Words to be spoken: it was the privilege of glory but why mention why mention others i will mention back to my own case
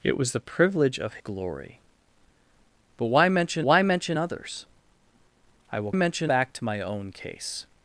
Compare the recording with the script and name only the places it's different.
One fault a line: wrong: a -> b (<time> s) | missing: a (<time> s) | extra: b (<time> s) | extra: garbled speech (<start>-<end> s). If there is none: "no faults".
no faults